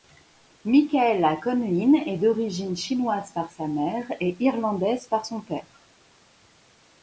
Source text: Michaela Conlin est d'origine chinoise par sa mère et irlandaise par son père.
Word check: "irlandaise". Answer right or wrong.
right